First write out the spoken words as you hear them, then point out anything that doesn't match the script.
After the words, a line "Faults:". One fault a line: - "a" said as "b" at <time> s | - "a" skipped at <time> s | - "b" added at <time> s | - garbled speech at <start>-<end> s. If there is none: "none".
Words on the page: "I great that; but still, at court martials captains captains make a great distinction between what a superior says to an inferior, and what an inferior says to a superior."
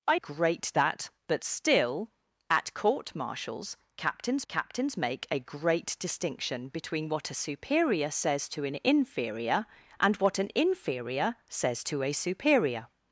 "I great that; but still, at court martials captains captains make a great distinction between what a superior says to an inferior, and what an inferior says to a superior."
Faults:
none